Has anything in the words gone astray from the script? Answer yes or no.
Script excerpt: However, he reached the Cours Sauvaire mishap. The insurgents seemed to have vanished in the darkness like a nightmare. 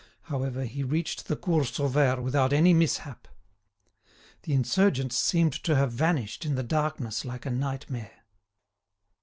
yes